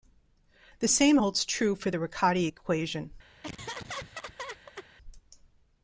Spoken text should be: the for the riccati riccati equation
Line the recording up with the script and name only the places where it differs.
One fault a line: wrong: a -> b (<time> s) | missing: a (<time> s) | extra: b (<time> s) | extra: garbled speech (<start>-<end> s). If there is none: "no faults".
extra: same holds true (0.9 s)
missing: riccati (2.5 s)